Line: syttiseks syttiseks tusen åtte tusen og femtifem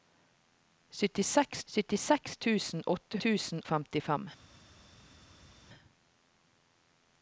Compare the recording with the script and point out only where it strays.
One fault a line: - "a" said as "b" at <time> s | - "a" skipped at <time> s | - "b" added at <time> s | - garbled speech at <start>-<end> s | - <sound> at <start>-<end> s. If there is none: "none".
none